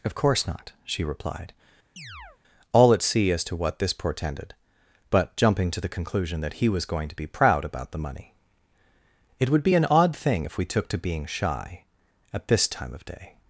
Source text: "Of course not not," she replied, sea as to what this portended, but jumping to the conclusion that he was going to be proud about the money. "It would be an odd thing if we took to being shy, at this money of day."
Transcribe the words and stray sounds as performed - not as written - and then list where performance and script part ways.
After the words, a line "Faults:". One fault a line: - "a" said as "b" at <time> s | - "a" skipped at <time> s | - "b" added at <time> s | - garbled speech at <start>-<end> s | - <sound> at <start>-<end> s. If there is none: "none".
"Of course not," she replied, all at sea as to what this portended, but jumping to the conclusion that he was going to be proud about the money. "It would be an odd thing if we took to being shy, at this time of day."
Faults:
- "not" skipped at 0.7 s
- chirp at 2.0-2.4 s
- "all at" added at 2.7 s
- "money" said as "time" at 12.7 s